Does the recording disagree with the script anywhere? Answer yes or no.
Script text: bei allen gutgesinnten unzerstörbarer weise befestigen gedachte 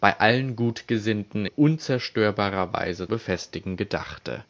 no